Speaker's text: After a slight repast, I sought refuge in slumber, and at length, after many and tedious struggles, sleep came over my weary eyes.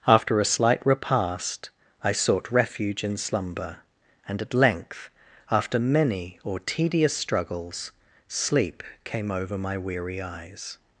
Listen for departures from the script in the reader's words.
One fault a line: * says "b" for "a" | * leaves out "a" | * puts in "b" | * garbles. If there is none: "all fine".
* says "or" for "and"